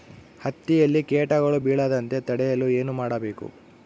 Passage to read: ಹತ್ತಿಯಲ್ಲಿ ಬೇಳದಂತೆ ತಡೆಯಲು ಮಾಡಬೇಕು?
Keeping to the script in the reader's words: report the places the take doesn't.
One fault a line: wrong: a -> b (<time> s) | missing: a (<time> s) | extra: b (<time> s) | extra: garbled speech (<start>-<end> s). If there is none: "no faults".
extra: ಕೇಟಗಳು (1.0 s)
extra: ಏನು (2.7 s)